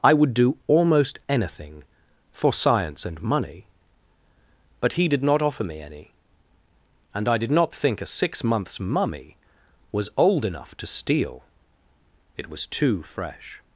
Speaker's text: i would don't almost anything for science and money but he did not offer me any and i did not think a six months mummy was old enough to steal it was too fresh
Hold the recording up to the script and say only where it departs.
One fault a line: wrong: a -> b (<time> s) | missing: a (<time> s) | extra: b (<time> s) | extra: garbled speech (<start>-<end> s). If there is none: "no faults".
wrong: don't -> do (0.3 s)